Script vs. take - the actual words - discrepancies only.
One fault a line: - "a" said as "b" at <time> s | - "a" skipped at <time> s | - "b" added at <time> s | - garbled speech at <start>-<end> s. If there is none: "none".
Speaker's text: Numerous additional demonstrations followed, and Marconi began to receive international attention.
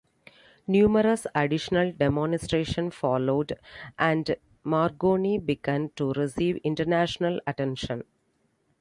none